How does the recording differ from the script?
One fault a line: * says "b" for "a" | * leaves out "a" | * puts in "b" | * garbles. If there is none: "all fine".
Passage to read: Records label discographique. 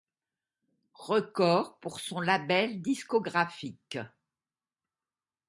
* puts in "pour son"